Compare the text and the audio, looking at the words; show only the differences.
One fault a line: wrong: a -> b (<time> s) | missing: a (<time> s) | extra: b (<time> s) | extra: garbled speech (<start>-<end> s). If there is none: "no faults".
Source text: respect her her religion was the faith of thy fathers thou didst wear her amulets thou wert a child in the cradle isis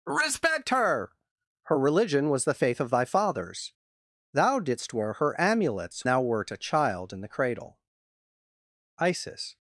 no faults